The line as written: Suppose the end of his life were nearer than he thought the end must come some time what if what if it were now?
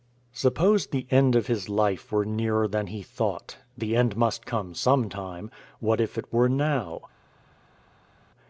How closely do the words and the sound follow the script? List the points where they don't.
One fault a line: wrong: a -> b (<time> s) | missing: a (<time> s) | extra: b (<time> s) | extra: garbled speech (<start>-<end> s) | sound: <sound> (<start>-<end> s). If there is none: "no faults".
missing: what if (6.2 s)